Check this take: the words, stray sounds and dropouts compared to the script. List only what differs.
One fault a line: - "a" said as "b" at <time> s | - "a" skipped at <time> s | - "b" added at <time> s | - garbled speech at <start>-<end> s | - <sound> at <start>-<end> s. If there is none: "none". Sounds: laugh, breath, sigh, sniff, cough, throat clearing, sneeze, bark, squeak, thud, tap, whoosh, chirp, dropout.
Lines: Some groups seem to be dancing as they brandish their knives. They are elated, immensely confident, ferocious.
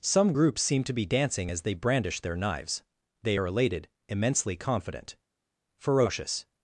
none